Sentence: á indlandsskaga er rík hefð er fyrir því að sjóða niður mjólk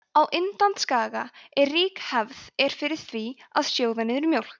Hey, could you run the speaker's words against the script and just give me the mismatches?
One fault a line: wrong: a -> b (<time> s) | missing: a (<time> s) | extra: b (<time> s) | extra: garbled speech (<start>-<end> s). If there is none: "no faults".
no faults